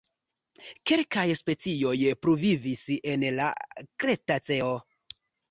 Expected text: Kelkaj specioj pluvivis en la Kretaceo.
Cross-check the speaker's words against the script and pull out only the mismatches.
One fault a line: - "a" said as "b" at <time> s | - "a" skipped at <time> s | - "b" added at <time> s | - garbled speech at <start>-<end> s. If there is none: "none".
none